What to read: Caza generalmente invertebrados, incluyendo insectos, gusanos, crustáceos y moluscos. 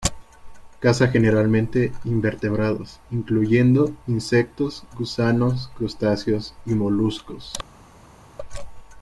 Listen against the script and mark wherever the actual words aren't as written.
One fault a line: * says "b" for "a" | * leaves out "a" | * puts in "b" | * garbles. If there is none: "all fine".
all fine